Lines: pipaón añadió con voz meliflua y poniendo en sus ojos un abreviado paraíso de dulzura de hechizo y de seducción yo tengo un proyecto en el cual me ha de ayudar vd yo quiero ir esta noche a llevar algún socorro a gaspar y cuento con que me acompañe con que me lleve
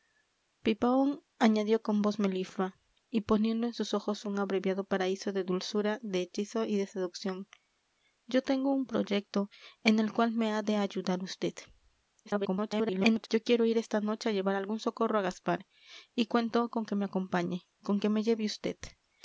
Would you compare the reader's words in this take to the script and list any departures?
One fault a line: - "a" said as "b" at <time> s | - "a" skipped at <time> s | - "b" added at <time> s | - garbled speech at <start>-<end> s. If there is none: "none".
- garbled speech at 12.3-13.3 s